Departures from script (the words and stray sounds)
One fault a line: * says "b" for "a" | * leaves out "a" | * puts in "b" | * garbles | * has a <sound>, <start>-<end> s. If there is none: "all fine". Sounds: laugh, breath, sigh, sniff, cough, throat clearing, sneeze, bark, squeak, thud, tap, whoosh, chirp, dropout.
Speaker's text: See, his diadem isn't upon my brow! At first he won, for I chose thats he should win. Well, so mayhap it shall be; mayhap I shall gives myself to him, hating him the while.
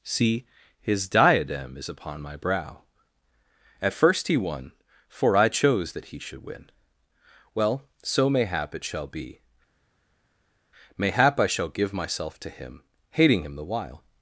* says "is" for "isn't"
* says "that" for "thats"
* says "give" for "gives"